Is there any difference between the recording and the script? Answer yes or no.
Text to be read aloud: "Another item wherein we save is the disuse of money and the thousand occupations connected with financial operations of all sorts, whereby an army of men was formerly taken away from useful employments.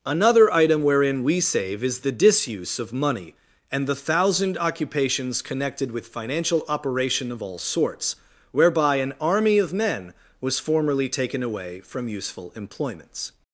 yes